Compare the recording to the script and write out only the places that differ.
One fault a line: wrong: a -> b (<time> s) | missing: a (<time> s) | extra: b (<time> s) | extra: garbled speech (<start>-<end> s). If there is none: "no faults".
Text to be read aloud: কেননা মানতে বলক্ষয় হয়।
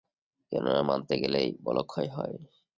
extra: গেলেই (1.2 s)